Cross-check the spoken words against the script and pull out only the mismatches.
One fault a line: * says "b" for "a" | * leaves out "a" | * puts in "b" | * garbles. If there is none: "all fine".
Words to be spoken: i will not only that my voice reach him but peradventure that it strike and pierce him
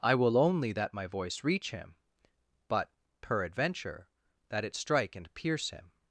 * leaves out "not"